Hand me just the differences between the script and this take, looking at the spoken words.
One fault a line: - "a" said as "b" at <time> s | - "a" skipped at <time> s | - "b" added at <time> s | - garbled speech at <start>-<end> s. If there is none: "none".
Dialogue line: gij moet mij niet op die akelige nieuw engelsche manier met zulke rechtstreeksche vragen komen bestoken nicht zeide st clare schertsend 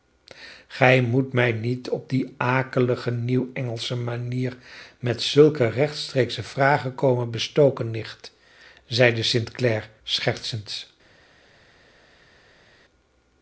none